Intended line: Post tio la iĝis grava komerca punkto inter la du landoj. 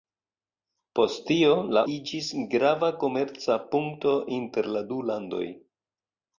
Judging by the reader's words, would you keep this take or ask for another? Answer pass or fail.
pass